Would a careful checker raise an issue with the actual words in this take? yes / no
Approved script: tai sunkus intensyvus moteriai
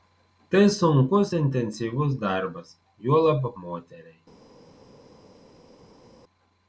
yes